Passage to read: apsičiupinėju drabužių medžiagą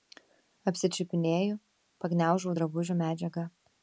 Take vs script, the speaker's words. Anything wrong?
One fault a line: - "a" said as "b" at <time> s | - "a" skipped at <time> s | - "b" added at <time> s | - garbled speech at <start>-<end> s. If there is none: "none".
- "pagniaužau" added at 2.0 s